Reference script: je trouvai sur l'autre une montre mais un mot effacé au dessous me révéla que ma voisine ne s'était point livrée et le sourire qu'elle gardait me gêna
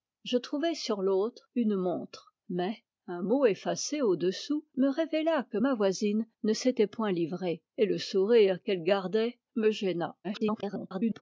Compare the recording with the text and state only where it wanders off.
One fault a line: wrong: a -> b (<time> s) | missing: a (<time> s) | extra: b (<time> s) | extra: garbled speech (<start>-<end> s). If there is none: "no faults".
extra: garbled speech (10.2-11.2 s)